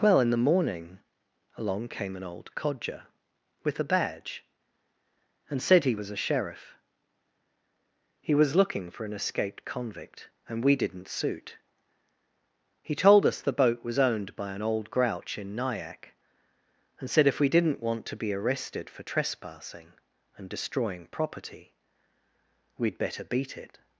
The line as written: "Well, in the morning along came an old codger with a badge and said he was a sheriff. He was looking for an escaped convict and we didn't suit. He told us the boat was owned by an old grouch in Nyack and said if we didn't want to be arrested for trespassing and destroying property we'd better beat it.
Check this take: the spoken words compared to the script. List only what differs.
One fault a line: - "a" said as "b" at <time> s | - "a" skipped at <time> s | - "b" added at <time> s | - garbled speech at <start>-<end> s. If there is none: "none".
none